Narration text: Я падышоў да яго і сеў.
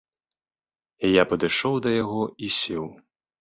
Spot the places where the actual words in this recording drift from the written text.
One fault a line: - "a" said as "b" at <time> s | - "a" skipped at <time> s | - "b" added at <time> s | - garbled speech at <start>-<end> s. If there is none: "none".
none